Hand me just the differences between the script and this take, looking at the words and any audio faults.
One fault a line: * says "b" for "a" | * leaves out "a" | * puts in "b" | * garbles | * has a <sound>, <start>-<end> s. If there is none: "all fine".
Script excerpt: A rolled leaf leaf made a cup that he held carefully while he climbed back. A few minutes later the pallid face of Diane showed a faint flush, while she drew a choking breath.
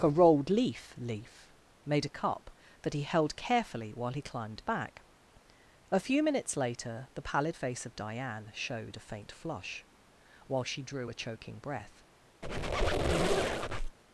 * has a squeak, 12.4-14.0 s